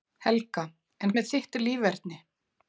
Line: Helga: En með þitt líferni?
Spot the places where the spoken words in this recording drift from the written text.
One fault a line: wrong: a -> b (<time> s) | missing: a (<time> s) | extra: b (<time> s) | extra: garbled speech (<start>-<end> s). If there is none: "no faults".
no faults